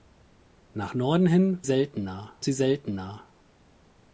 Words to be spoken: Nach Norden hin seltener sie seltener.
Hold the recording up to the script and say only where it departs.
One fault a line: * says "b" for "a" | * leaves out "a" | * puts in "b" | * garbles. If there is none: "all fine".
all fine